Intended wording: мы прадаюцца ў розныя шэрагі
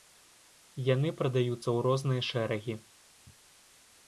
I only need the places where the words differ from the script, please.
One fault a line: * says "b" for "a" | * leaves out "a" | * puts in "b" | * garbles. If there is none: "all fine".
* says "яны" for "мы"